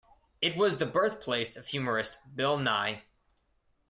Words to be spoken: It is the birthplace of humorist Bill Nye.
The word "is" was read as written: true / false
false